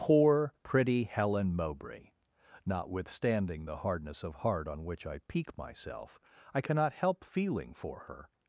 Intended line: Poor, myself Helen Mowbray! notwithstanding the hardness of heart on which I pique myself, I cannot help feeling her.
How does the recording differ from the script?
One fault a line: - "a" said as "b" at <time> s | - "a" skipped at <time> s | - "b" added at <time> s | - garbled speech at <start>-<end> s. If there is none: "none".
- "myself" said as "pretty" at 0.6 s
- "for" added at 7.7 s